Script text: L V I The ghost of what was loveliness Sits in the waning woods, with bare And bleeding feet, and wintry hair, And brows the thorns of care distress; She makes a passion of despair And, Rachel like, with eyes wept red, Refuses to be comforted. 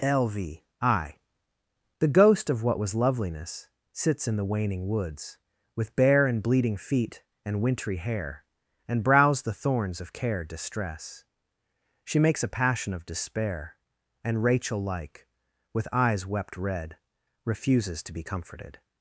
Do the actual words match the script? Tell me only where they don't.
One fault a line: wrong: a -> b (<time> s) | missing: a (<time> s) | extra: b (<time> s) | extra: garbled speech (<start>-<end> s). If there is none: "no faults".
no faults